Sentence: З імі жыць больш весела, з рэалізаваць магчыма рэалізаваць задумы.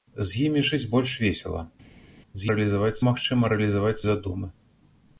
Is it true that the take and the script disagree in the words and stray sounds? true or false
false